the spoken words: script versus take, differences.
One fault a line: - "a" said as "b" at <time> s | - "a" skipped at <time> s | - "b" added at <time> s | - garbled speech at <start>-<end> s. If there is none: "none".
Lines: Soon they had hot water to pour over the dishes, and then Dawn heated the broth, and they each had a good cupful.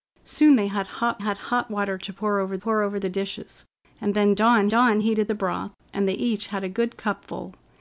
- "had hot" added at 1.2 s
- "pour over" added at 2.6 s
- "Dawn" added at 4.7 s